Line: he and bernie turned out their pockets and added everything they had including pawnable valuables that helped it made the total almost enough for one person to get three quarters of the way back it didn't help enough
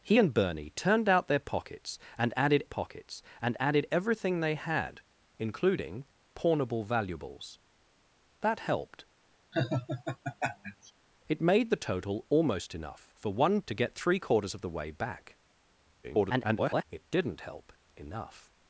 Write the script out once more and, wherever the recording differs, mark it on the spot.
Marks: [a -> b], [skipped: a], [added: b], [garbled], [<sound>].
he and bernie turned out their pockets and added [added: pockets and added] everything they had including pawnable valuables that helped [laugh] it made the total almost enough for one [skipped: person] to get three quarters of the way back [garbled] it didn't help enough